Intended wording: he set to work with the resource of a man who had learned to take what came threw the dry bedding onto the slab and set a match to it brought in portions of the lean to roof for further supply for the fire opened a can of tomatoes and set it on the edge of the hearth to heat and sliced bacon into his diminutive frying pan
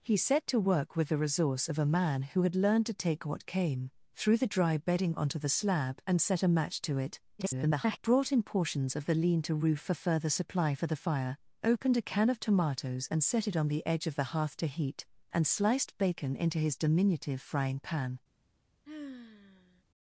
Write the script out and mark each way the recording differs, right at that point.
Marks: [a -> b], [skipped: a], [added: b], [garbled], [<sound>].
he set to work with the resource of a man who had learned to take what came threw the dry bedding onto the slab and set a match to it [garbled] brought in portions of the lean to roof for further supply for the fire opened a can of tomatoes and set it on the edge of the hearth to heat and sliced bacon into his diminutive frying pan [sigh]